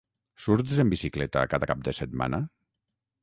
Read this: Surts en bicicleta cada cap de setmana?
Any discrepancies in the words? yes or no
no